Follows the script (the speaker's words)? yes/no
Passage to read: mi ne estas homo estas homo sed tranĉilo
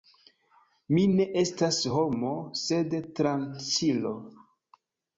no